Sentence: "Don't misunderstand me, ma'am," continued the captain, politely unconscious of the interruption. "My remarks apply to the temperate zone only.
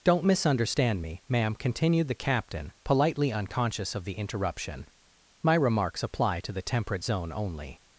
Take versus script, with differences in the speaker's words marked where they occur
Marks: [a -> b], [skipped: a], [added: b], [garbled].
"Don't misunderstand me, ma'am," continued the captain, politely unconscious of the interruption. "My remarks apply to the temperate zone only.